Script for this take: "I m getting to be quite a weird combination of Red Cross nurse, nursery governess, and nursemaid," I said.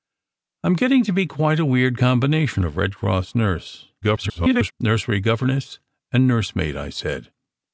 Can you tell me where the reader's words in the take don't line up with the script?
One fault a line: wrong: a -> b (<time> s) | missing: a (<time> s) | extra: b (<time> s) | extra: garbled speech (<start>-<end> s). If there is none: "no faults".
extra: garbled speech (4.0-4.7 s)